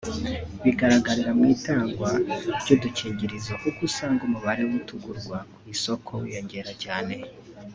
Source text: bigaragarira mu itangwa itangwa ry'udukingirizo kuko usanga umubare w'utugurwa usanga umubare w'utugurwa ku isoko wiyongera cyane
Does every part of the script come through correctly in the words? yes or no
no